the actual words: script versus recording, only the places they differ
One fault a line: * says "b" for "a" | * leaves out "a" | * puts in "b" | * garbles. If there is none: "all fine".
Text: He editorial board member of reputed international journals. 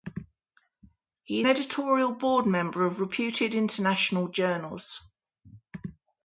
all fine